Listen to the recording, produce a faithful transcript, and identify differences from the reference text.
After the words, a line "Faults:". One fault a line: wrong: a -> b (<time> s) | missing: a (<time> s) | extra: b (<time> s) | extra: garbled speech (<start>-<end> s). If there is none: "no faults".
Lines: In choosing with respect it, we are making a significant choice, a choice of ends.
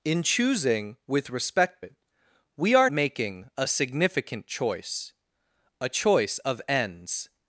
In choosing with respect it, we are making a significant choice, a choice of ends.
Faults:
no faults